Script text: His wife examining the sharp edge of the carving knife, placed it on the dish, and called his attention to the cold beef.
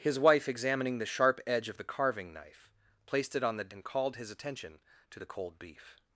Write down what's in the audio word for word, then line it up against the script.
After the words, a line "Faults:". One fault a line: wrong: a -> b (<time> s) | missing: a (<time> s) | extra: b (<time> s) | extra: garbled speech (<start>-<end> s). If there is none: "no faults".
His wife examining the sharp edge of the carving knife, placed it on the and called his attention to the cold beef.
Faults:
missing: dish (3.7 s)